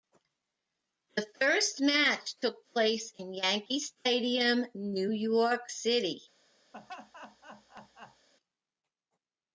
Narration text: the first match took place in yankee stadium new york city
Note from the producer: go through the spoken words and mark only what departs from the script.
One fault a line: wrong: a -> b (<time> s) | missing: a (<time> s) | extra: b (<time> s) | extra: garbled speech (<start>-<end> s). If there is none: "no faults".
no faults